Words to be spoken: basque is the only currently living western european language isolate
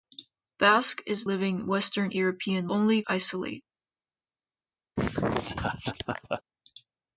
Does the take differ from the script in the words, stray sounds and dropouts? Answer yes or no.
yes